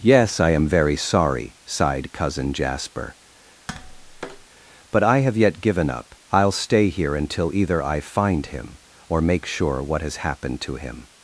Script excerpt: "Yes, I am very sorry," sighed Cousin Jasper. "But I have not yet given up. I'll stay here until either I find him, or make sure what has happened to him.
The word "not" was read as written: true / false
false